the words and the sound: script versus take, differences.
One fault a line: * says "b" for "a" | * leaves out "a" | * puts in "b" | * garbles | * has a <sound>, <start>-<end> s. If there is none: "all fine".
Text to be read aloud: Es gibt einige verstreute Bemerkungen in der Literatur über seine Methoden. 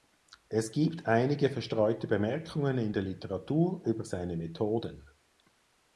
all fine